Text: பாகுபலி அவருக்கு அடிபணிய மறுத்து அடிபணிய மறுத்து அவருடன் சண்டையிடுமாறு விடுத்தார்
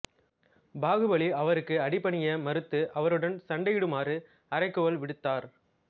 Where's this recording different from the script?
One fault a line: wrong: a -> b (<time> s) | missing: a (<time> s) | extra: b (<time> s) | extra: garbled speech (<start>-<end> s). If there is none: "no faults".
missing: அடிபணிய மறுத்து (2.8 s)
extra: அறைகூவல் (4.5 s)